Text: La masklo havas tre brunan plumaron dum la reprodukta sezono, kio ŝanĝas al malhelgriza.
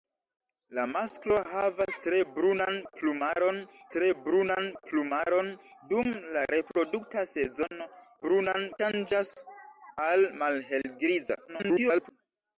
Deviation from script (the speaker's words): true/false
true